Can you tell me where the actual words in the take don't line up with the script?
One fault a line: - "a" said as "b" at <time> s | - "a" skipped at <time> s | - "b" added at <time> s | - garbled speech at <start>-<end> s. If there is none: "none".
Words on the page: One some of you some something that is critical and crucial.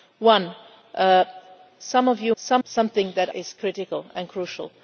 none